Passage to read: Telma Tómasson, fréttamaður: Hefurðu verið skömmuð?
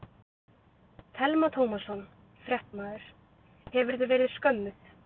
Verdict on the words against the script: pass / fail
pass